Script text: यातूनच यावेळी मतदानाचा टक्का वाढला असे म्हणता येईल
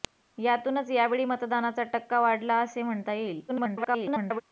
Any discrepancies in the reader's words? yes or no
yes